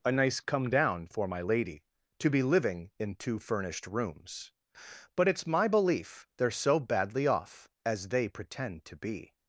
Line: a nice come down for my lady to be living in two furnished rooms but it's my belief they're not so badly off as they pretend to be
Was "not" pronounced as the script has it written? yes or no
no